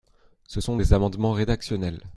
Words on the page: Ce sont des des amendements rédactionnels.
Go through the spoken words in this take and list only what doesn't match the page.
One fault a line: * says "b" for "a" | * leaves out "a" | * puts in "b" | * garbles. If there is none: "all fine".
* leaves out "des"